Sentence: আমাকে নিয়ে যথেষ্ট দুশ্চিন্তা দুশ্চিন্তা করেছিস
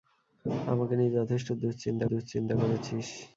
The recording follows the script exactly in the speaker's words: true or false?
true